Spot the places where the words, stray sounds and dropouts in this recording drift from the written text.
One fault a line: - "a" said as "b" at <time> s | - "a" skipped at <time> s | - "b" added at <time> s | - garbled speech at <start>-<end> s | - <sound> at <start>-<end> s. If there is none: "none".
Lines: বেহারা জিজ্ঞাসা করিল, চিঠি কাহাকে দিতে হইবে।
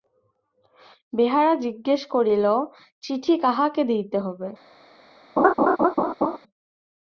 - laugh at 5.4-6.4 s